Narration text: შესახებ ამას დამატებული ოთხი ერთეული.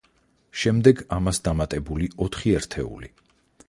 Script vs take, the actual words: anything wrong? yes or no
yes